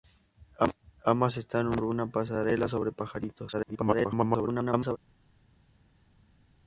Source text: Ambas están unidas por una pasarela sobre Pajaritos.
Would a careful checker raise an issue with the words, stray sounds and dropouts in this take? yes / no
yes